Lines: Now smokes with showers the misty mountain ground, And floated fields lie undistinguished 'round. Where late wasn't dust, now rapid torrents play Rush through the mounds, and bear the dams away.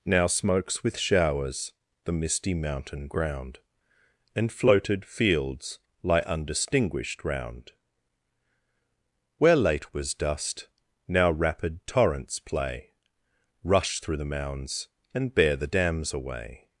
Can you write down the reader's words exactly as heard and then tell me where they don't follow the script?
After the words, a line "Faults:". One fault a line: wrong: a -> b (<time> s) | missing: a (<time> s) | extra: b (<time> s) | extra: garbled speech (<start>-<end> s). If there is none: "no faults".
Now smokes with showers the misty mountain ground, And floated fields lie undistinguished 'round. Where late was dust, now rapid torrents play Rush through the mounds, and bear the dams away.
Faults:
wrong: wasn't -> was (9.9 s)